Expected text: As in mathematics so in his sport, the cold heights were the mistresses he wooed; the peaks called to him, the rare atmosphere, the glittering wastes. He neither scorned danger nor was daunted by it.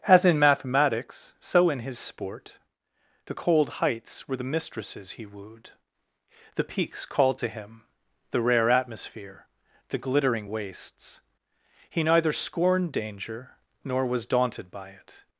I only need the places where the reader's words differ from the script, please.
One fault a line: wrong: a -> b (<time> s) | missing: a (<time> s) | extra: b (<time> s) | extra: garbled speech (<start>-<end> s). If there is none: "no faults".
no faults